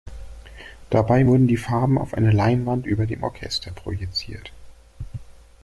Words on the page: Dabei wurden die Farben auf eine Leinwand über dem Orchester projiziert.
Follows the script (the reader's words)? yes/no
yes